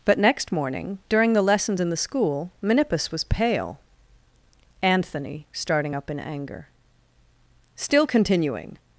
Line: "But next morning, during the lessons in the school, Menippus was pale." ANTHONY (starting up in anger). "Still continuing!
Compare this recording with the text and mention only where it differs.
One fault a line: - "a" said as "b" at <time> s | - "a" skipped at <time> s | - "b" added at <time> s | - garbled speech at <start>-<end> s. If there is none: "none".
none